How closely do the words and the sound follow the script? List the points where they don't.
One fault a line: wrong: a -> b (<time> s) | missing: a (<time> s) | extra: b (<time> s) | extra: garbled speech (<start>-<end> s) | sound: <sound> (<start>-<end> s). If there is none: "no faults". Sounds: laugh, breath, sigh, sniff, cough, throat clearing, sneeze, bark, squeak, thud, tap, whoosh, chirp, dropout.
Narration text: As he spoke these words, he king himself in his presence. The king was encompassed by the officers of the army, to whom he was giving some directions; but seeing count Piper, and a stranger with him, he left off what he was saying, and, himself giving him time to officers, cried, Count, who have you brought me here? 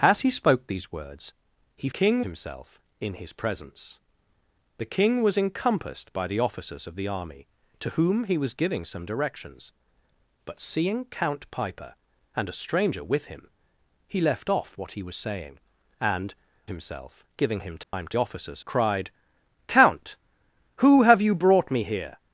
sound: dropout (17.8-17.9 s)